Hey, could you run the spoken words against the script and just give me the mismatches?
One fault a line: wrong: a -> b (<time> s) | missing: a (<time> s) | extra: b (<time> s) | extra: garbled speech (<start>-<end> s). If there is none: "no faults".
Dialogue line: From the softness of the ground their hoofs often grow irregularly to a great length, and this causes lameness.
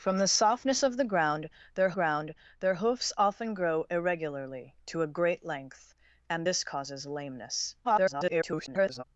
extra: ground their (1.9 s)
extra: garbled speech (7.8-9.0 s)